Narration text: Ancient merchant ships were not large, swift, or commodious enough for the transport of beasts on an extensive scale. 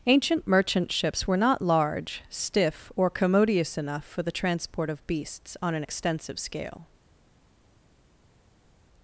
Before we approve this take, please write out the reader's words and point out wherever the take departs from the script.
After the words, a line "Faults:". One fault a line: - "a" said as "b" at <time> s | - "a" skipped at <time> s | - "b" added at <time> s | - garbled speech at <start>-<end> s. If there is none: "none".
Ancient merchant ships were not large, stiff, or commodious enough for the transport of beasts on an extensive scale.
Faults:
- "swift" said as "stiff" at 2.3 s